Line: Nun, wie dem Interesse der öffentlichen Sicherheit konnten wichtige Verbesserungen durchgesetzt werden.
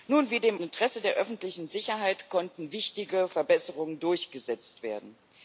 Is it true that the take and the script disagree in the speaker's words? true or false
false